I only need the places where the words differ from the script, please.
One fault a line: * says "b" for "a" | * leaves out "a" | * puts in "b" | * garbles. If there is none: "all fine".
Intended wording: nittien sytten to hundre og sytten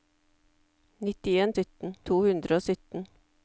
all fine